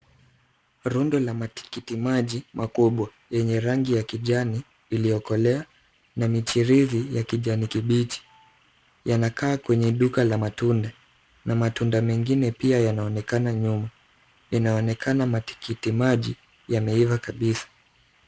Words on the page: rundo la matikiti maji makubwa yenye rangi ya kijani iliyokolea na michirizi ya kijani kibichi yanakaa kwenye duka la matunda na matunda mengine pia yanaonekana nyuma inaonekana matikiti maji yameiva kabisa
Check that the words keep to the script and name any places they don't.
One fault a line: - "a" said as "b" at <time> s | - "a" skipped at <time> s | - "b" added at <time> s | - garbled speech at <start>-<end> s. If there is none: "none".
none